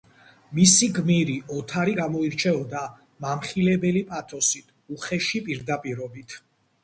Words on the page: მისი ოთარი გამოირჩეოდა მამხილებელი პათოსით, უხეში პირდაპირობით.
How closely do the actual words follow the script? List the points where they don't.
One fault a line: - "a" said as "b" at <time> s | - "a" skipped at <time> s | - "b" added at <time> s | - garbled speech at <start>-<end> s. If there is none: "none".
- "გმირი" added at 1.0 s